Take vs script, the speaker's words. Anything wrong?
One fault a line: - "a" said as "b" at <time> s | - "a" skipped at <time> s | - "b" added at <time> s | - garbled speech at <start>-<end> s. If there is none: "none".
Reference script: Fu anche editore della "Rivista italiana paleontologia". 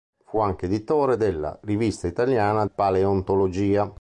none